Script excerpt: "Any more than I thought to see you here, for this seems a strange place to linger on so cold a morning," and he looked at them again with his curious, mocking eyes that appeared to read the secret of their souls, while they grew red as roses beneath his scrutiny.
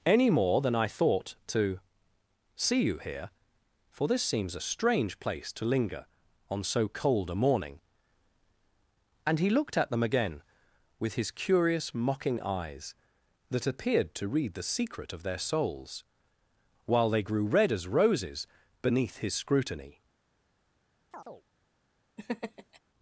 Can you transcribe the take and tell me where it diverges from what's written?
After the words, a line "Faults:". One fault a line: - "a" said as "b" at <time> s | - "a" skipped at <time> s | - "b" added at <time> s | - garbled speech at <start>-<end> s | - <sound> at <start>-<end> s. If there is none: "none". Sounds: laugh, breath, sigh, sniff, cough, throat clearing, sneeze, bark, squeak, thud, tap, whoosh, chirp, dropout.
"Any more than I thought to see you here, for this seems a strange place to linger on so cold a morning," and he looked at them again with his curious, mocking eyes that appeared to read the secret of their souls, while they grew red as roses beneath his scrutiny.
Faults:
- chirp at 21.1-21.4 s
- laugh at 22.2-22.8 s